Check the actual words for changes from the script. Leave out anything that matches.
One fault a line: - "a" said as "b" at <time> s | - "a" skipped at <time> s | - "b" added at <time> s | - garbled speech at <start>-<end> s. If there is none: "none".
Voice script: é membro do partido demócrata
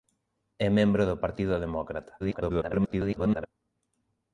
- garbled speech at 2.2-3.5 s